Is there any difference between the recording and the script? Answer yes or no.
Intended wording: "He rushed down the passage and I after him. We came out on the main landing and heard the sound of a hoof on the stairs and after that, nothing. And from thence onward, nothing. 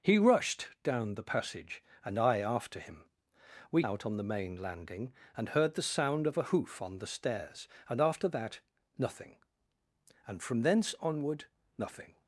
yes